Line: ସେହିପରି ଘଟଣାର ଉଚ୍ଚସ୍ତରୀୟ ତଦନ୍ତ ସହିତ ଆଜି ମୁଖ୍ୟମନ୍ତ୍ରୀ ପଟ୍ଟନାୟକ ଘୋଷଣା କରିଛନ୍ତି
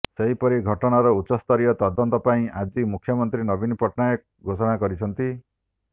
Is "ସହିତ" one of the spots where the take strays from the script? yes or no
yes